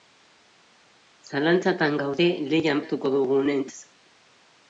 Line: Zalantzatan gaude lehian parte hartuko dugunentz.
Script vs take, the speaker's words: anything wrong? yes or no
yes